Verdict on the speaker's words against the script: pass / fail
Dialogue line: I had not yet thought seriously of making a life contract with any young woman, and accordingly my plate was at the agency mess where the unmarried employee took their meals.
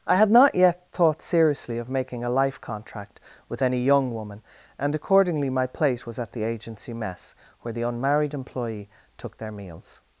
pass